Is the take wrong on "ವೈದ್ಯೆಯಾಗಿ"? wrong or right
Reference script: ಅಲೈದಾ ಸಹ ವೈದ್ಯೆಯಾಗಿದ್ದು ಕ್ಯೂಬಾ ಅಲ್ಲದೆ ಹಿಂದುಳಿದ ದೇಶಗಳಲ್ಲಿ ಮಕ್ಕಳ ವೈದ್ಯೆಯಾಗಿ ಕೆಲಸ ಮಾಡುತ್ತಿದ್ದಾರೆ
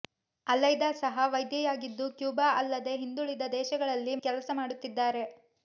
wrong